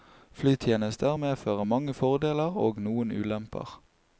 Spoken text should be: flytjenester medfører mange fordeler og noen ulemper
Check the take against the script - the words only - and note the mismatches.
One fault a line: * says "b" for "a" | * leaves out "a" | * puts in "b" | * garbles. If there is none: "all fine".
all fine